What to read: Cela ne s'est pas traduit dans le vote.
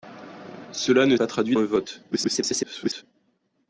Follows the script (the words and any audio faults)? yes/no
no